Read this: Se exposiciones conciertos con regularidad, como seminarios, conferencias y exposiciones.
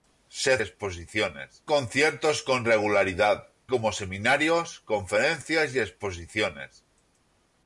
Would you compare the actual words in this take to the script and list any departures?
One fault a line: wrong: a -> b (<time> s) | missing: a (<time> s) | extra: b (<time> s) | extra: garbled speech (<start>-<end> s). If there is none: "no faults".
no faults